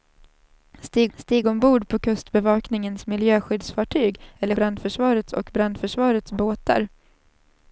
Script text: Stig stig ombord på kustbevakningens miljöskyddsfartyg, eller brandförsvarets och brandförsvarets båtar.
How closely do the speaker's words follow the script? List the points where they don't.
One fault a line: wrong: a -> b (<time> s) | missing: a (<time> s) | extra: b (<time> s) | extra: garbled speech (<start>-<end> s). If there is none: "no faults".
no faults